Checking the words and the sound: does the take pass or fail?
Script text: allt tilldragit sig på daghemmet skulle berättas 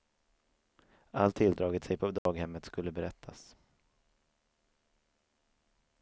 fail